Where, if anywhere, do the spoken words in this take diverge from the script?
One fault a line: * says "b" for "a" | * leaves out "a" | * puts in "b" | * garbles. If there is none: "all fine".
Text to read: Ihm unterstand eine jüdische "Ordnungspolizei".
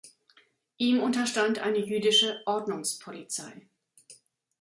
all fine